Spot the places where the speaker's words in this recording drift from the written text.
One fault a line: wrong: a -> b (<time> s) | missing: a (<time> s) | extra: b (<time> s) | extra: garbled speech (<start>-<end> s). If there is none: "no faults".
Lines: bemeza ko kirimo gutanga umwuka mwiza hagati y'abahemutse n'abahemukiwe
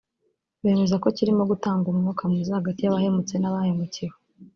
no faults